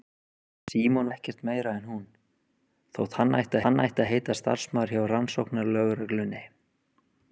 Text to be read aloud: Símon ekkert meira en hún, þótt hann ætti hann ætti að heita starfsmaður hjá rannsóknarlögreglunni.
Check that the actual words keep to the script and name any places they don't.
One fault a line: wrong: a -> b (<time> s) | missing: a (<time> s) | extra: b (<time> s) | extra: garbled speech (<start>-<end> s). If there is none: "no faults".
no faults